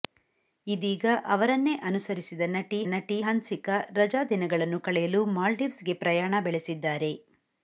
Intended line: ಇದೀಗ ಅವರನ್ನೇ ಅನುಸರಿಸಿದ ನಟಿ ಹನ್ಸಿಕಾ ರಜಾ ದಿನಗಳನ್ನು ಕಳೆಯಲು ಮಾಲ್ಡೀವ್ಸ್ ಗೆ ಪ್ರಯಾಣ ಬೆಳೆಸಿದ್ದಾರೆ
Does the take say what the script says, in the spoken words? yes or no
no